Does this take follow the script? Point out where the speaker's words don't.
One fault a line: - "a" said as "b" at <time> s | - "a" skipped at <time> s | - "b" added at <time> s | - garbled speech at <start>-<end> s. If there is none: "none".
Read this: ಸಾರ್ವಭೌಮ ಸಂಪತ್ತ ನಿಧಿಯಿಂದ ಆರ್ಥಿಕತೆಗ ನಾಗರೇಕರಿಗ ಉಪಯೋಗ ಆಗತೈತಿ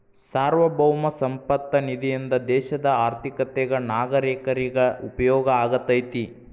- "ದೇಶದ" added at 2.5 s